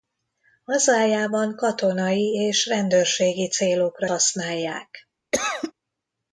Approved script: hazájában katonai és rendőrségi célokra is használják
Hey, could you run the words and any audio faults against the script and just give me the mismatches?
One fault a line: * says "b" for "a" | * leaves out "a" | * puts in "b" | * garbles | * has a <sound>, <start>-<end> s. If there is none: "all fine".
* leaves out "is"
* has a cough, 5.3-5.7 s